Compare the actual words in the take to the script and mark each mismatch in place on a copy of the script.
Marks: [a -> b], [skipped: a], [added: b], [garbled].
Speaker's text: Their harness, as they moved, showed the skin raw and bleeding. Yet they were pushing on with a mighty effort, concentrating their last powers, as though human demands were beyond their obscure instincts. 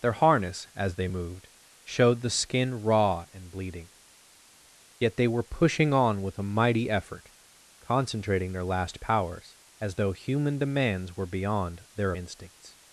Their harness, as they moved, showed the skin raw and bleeding. Yet they were pushing on with a mighty effort, concentrating their last powers, as though human demands were beyond their [skipped: obscure] instincts.